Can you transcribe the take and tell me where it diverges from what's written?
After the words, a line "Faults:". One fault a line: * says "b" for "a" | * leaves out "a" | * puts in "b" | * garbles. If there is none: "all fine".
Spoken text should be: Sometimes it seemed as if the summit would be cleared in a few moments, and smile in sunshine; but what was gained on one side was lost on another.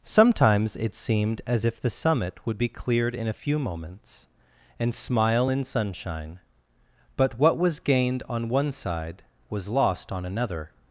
Sometimes it seemed as if the summit would be cleared in a few moments, and smile in sunshine; but what was gained on one side was lost on another.
Faults:
all fine